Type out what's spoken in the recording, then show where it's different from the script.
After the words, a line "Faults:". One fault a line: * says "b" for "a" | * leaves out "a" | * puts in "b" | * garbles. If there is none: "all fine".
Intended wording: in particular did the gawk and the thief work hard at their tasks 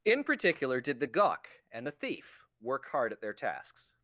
in particular did the gawk and the thief work hard at their tasks
Faults:
all fine